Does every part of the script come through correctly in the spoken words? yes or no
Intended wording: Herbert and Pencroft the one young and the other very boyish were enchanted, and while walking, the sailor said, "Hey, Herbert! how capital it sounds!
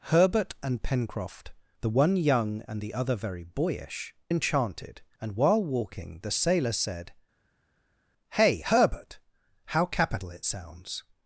no